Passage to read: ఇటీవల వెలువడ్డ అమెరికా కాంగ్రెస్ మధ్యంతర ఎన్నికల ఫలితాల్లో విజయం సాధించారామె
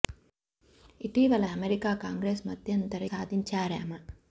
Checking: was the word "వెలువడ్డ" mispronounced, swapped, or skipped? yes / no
yes